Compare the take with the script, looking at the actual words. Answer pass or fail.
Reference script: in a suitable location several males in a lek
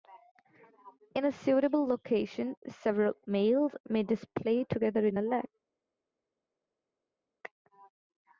fail